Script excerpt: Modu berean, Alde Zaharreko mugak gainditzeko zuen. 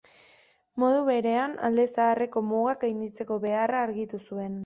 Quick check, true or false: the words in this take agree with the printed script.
false